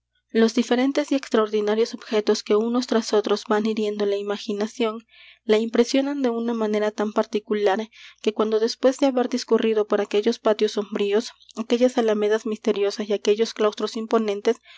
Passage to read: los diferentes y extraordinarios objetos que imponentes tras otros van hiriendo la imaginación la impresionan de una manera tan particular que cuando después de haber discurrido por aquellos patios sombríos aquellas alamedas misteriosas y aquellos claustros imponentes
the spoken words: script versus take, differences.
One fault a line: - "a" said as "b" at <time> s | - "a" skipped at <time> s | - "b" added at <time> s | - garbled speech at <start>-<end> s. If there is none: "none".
- "imponentes" said as "unos" at 2.5 s